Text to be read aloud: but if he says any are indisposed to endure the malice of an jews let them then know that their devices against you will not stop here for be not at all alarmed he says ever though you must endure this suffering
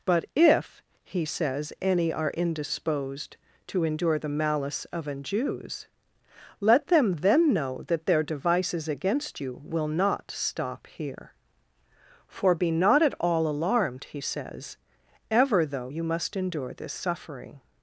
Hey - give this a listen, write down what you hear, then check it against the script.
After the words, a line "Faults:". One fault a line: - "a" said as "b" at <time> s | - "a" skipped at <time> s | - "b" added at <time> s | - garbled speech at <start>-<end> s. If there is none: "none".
but if he says any are indisposed to endure the malice of an jews let them then know that their devices against you will not stop here for be not at all alarmed he says ever though you must endure this suffering
Faults:
none